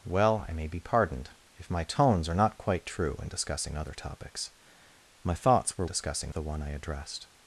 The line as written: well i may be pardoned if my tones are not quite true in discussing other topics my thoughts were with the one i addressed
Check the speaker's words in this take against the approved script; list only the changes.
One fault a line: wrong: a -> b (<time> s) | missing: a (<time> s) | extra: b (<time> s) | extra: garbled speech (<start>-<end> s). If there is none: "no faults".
wrong: with -> discussing (5.8 s)